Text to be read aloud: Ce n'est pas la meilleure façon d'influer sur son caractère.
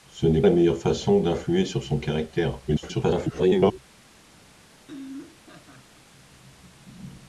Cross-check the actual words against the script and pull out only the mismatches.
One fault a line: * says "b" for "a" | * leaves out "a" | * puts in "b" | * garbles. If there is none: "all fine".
* leaves out "pas"
* garbles